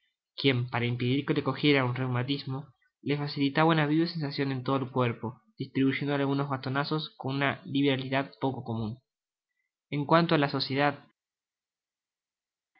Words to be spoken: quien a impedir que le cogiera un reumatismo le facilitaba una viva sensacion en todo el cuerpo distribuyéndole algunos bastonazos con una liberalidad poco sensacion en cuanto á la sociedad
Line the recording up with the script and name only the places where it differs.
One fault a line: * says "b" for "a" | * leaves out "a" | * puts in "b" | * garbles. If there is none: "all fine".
* says "para" for "a"
* says "comun" for "sensacion"